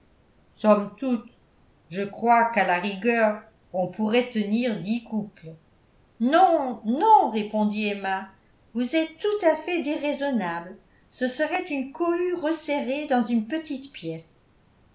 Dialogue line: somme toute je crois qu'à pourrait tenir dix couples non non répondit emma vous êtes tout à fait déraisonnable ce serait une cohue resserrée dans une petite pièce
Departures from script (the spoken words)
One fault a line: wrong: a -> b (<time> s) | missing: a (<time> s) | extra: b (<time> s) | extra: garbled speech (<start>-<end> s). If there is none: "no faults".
extra: la rigueur on (2.6 s)